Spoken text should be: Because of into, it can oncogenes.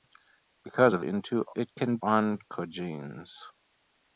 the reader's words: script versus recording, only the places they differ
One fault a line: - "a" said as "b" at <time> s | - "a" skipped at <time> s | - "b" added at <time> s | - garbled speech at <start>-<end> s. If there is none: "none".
none